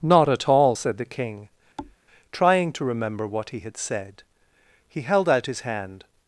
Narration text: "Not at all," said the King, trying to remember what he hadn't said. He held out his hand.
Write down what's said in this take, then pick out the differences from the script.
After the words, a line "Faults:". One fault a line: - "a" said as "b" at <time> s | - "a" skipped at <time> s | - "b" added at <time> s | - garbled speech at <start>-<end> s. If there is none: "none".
"Not at all," said the King, trying to remember what he had said. He held out his hand.
Faults:
- "hadn't" said as "had" at 3.6 s